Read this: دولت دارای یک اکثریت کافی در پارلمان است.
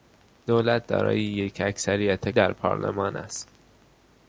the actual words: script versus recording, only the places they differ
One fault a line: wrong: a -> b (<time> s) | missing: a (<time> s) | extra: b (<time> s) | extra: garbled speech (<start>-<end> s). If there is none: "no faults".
missing: کافی (2.3 s)